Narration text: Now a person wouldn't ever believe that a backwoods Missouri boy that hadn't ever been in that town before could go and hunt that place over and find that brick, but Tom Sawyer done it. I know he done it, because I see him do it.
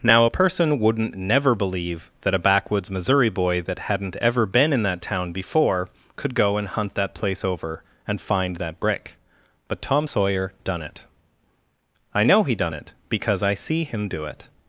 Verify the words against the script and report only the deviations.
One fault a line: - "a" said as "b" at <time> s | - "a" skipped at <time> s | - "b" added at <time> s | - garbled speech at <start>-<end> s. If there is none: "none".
- "ever" said as "never" at 1.2 s